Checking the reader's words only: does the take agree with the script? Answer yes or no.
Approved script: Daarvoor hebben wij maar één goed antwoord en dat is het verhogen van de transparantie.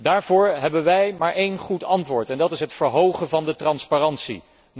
yes